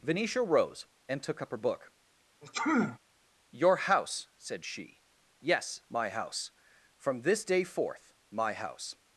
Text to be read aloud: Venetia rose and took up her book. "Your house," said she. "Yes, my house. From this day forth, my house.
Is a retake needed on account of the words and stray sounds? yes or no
yes